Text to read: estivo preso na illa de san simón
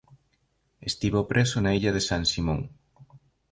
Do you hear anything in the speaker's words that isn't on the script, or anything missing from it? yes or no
no